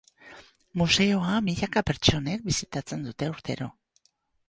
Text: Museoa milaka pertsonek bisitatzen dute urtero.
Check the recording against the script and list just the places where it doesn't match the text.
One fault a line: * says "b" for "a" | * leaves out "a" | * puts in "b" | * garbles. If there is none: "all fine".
all fine